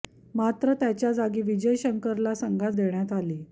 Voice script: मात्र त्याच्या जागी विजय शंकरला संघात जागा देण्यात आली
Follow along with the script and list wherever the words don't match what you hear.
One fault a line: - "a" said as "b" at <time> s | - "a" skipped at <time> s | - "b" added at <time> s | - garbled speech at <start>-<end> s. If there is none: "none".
- "जागा" skipped at 2.7 s